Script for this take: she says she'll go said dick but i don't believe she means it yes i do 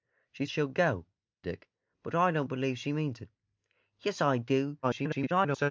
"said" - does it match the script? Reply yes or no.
no